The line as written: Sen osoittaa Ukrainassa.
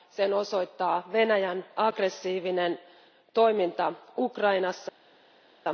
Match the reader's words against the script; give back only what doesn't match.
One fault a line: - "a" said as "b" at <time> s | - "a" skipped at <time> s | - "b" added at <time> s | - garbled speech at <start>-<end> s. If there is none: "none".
- "Venäjän aggressiivinen toiminta" added at 1.1 s